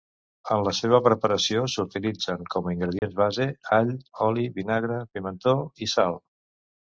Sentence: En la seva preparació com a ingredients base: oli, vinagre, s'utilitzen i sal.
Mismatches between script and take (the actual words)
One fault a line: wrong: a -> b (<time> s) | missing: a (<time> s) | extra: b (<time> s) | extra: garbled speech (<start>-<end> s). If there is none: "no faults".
extra: s'utilitzen (1.7 s)
extra: all (3.8 s)
wrong: s'utilitzen -> pimentó (5.2 s)